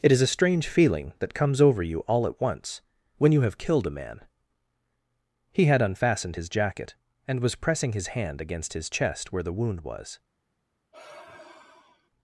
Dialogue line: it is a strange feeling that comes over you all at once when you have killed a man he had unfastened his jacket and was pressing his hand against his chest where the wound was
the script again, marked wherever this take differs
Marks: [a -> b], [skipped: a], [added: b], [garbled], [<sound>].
it is a strange feeling that comes over you all at once when you have killed a man he had unfastened his jacket and was pressing his hand against his chest where the wound was [sigh]